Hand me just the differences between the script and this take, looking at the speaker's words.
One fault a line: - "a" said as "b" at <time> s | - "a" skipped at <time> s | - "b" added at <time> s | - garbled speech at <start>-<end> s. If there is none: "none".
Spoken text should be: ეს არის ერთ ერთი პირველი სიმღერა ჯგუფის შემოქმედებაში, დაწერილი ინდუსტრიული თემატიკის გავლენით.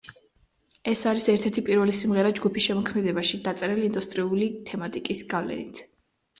none